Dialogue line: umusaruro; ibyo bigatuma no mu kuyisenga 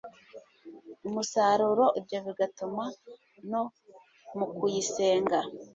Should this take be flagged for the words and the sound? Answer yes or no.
no